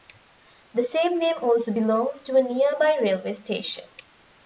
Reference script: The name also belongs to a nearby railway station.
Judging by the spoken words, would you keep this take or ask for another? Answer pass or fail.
fail